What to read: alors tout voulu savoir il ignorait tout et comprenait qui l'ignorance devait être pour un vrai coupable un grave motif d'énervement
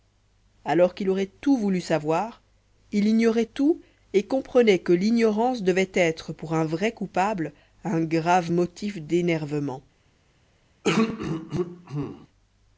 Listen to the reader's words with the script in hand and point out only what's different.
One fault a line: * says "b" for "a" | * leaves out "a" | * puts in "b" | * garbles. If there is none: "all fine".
* puts in "qu'il aurait"
* says "que" for "qui"